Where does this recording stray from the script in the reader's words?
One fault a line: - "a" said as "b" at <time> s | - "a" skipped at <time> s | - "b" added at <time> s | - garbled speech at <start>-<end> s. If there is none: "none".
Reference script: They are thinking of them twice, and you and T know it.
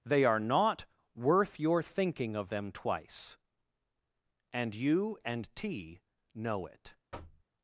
- "not worth your" added at 0.4 s